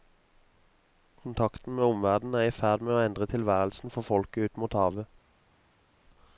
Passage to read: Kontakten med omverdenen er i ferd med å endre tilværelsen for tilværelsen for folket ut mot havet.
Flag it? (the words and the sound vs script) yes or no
yes